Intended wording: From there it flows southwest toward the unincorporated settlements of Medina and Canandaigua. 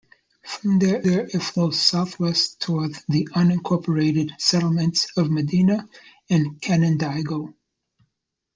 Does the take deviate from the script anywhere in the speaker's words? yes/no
yes